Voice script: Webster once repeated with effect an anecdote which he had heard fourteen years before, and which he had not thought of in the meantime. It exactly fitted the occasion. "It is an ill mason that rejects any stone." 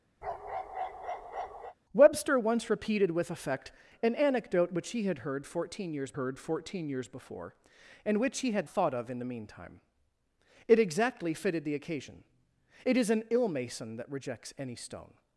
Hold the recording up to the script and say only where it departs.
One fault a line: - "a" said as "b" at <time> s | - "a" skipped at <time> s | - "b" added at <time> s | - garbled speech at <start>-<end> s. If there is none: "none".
- "heard fourteen years" added at 6.1 s
- "not" skipped at 8.7 s